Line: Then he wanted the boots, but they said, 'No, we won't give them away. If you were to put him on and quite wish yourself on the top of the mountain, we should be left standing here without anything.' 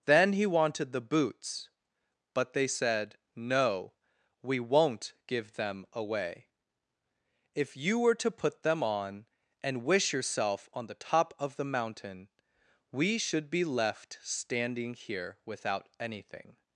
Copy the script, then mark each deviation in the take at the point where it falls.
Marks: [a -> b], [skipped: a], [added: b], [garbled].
Then he wanted the boots, but they said, 'No, we won't give them away. If you were to put [him -> them] on and [skipped: quite] wish yourself on the top of the mountain, we should be left standing here without anything.'